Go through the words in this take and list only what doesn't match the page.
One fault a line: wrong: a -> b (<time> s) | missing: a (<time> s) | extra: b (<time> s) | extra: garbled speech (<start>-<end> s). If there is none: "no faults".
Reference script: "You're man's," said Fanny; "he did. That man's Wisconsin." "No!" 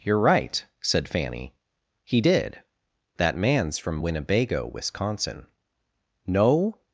wrong: man's -> right (0.2 s)
extra: from Winnebago (3.8 s)